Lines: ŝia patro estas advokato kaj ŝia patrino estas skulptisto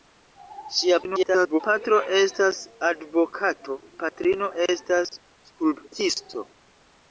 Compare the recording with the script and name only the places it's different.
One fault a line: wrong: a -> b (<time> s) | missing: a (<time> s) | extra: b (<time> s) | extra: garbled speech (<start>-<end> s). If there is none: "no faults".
extra: garbled speech (1.0-1.6 s)
missing: kaj ŝia (3.8 s)